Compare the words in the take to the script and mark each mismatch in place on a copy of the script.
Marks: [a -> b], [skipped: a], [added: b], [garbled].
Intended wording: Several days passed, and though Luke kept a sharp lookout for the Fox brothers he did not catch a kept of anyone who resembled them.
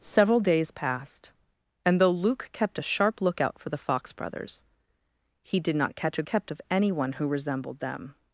Several days passed, and though Luke kept a sharp lookout for the Fox brothers he did not catch a kept of anyone who resembled them.